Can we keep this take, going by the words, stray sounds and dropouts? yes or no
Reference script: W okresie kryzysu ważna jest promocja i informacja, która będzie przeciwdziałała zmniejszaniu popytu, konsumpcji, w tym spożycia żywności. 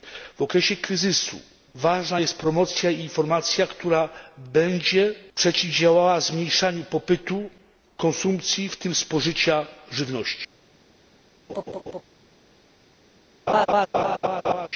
no